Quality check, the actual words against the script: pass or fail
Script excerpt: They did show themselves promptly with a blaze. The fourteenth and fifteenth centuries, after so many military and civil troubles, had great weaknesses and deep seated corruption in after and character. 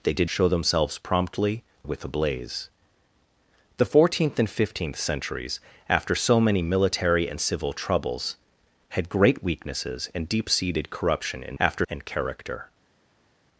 pass